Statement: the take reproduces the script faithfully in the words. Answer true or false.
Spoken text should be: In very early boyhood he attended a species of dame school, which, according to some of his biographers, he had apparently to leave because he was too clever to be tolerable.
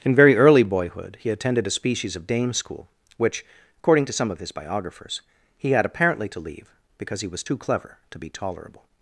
true